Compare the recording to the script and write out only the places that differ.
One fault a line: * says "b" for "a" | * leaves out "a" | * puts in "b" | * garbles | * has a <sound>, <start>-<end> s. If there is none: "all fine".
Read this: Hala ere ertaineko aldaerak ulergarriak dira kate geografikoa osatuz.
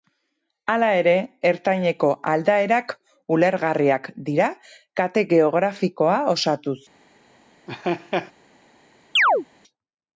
* has a laugh, 7.7-8.3 s
* has a chirp, 9.2-9.5 s